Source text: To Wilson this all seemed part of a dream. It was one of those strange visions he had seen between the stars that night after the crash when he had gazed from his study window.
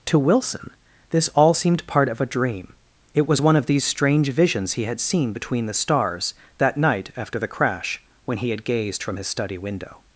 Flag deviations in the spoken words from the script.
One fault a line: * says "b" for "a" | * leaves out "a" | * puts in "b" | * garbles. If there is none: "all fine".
* says "these" for "those"